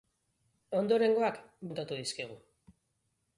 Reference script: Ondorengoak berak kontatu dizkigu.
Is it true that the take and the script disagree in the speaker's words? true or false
true